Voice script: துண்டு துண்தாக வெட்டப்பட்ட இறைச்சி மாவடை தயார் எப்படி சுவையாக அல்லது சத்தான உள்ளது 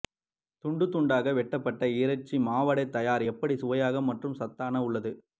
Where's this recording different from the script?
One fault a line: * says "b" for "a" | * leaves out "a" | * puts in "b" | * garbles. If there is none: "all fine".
* says "மற்றும்" for "அல்லது"